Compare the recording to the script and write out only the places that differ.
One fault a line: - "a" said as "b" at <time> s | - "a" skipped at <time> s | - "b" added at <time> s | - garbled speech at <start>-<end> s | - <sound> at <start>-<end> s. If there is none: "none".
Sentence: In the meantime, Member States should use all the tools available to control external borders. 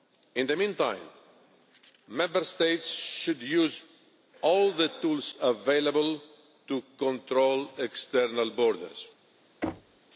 - thud at 9.6-10.0 s